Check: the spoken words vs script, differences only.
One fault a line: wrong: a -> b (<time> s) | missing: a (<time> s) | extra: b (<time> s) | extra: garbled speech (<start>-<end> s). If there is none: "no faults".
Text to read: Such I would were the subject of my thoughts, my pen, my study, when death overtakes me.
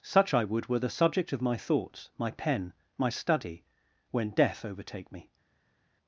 wrong: overtakes -> overtake (4.6 s)